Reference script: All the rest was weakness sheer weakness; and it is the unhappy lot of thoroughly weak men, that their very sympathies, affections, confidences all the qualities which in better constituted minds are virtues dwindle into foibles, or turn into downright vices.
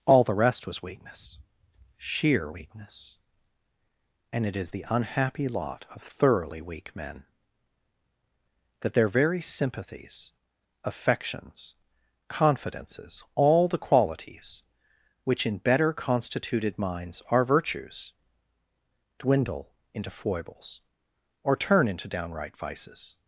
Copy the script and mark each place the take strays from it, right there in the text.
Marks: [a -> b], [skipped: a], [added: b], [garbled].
All the rest was weakness sheer weakness; and it is the unhappy lot of thoroughly weak men, that their very sympathies, affections, confidences all the qualities which in better constituted minds are virtues dwindle into foibles, or turn into downright vices.